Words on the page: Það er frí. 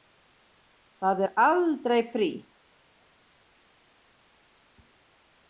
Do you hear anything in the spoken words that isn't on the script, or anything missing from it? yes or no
yes